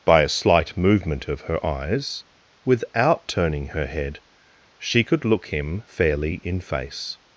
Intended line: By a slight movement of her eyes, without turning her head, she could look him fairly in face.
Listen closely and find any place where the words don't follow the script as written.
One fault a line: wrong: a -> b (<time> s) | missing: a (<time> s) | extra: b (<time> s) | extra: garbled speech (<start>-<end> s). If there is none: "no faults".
no faults